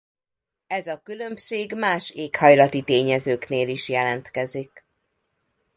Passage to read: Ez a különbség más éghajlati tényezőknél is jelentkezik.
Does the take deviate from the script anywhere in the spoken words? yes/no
no